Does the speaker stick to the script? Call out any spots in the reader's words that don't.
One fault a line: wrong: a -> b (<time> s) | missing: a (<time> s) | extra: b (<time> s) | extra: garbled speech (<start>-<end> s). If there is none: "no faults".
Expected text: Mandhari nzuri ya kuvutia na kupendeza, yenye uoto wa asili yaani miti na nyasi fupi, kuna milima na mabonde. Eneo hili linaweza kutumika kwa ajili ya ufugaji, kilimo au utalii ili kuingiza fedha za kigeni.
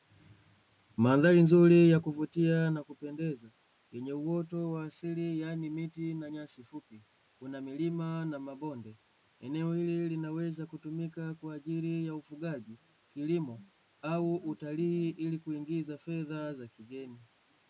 no faults